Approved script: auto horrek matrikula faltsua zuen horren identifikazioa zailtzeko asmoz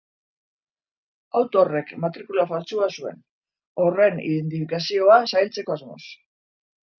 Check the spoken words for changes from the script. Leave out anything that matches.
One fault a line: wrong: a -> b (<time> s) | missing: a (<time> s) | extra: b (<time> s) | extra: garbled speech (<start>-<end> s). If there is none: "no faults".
no faults